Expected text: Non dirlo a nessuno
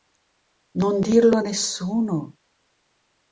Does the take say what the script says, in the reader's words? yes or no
yes